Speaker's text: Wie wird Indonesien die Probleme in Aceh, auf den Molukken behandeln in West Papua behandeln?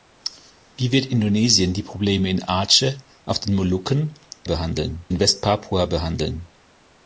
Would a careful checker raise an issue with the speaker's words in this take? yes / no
no